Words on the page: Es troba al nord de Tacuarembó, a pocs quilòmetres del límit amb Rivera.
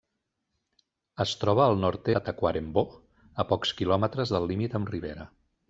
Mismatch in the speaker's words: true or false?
false